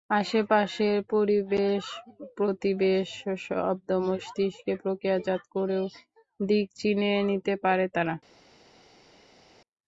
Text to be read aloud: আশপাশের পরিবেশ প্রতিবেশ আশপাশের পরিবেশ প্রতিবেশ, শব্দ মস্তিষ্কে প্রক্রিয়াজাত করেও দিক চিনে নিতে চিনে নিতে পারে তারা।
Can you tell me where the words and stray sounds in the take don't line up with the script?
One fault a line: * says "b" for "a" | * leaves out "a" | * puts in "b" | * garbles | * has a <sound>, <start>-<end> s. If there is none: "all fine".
* leaves out "আশপাশের পরিবেশ প্রতিবেশ"
* leaves out "চিনে নিতে"